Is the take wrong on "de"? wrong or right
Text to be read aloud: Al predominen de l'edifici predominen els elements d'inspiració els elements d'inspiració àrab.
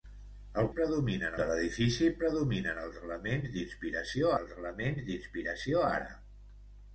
right